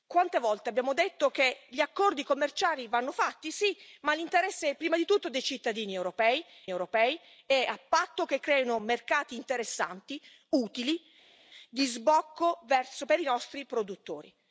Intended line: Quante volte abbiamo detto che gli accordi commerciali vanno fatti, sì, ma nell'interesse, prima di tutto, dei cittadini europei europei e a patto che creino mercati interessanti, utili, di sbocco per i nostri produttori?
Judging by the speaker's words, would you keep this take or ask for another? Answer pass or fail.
pass